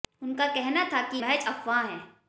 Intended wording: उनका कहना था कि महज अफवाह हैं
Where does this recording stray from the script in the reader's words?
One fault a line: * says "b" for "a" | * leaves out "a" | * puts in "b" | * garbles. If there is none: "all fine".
all fine